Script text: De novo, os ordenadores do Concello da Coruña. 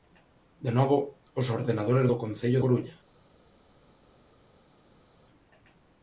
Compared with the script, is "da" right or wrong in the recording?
wrong